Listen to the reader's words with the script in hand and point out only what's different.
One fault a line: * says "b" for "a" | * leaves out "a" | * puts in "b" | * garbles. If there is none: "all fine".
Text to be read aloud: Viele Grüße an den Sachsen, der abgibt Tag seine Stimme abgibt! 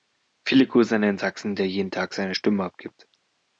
* says "jeden" for "abgibt"